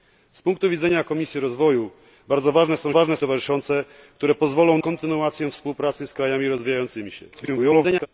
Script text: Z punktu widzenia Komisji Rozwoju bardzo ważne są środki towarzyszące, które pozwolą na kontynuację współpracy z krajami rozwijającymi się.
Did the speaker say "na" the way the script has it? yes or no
no